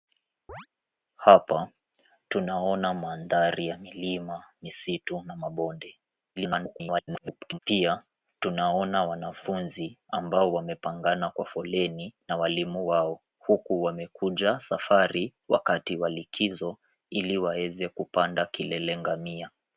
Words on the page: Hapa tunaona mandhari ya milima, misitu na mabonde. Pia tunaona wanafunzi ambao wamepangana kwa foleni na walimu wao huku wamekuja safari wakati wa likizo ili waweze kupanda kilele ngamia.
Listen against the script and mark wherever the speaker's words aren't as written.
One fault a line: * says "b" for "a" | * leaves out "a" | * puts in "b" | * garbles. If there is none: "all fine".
* garbles